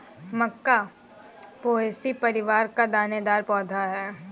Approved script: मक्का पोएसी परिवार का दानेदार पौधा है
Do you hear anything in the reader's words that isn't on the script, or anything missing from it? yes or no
no